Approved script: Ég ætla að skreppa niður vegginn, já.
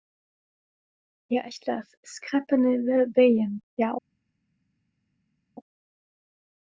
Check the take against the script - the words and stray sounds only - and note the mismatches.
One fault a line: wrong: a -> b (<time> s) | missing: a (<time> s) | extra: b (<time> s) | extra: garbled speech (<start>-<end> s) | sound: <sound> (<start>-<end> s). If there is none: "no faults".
no faults